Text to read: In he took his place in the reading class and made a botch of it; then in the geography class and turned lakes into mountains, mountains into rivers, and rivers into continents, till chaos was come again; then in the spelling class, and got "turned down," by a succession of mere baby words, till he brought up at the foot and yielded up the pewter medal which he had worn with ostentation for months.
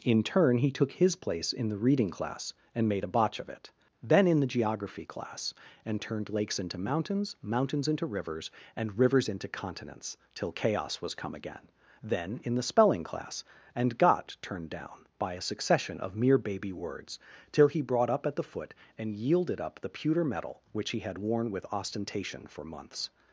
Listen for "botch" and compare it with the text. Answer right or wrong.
right